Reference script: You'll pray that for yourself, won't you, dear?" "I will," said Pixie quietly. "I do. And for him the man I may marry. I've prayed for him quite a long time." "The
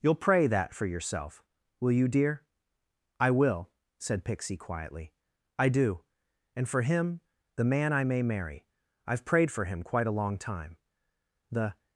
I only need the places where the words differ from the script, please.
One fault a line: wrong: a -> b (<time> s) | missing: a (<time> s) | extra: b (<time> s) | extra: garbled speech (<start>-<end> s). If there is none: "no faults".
wrong: won't -> will (1.8 s)